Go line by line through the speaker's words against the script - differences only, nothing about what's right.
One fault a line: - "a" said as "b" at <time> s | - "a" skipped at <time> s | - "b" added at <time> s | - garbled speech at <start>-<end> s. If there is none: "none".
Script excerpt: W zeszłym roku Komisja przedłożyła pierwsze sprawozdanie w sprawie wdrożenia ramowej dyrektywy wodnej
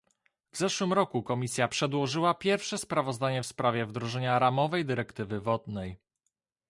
none